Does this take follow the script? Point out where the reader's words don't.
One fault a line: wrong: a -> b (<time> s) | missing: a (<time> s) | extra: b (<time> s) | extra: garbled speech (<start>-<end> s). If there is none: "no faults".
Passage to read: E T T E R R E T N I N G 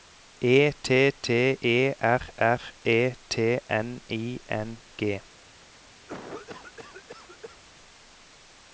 no faults